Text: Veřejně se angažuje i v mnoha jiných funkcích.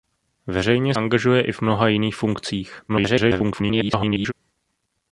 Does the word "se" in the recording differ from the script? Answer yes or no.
yes